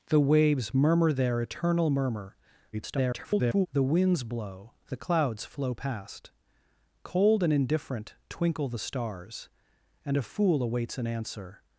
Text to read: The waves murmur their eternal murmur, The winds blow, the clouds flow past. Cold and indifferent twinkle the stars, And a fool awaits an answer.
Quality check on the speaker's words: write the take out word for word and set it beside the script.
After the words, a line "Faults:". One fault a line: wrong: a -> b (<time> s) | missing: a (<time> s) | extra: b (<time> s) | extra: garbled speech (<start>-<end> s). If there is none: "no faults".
The waves murmur their eternal murmur, [garbled] The winds blow, the clouds flow past. Cold and indifferent twinkle the stars, And a fool awaits an answer.
Faults:
extra: garbled speech (2.7-3.7 s)